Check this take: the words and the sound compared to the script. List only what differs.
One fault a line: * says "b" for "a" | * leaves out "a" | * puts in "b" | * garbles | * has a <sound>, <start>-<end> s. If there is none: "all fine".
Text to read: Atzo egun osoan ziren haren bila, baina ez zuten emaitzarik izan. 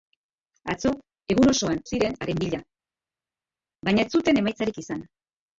all fine